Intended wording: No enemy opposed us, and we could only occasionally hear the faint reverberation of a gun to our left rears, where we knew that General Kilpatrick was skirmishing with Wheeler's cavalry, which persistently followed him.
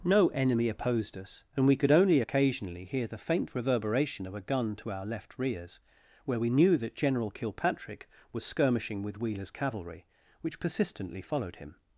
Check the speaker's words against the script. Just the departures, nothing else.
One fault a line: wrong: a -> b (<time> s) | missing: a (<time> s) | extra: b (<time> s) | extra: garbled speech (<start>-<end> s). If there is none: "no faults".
no faults